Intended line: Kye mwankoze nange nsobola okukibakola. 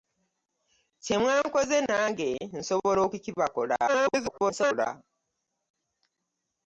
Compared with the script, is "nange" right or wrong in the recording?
right